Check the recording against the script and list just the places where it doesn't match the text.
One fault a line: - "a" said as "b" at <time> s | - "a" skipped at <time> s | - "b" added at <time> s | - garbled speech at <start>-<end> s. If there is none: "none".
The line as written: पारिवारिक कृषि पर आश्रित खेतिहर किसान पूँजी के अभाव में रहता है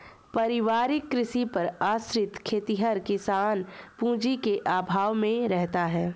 none